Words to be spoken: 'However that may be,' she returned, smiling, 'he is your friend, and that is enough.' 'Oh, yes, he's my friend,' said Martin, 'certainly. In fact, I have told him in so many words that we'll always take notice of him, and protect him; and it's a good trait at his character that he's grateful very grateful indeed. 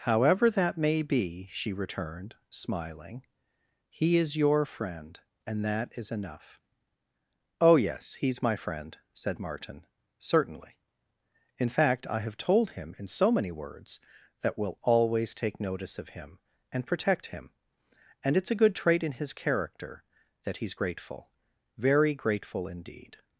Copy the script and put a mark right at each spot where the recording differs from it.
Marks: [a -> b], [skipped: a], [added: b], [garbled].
'However that may be,' she returned, smiling, 'he is your friend, and that is enough.' 'Oh, yes, he's my friend,' said Martin, 'certainly. In fact, I have told him in so many words that we'll always take notice of him, and protect him; and it's a good trait [at -> in] his character that he's grateful very grateful indeed.